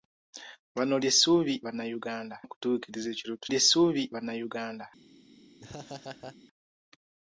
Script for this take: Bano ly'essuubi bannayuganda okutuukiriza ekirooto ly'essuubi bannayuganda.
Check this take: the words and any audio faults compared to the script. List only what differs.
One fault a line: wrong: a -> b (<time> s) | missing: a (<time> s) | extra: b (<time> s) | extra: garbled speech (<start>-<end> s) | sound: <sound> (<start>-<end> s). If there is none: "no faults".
sound: laugh (5.6-6.4 s)